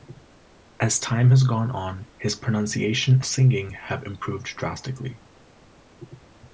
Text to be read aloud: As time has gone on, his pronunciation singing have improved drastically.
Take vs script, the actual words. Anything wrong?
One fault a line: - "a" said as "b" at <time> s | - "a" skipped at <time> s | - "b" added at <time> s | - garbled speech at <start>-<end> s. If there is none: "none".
none